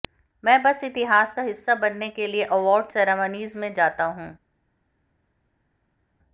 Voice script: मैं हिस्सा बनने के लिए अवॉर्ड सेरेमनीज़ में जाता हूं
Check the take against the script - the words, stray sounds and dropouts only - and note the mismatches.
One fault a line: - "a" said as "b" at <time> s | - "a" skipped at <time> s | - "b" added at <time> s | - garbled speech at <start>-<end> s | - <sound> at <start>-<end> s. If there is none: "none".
- "बस इतिहास का" added at 0.6 s